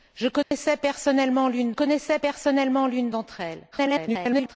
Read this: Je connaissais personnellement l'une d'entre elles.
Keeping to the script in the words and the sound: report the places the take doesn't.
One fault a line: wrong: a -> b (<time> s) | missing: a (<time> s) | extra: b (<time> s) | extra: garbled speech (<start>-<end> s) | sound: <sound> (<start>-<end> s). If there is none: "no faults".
sound: dropout (0.4-0.5 s)
extra: connaissais personnellement l'une (1.7 s)
extra: garbled speech (3.7-4.6 s)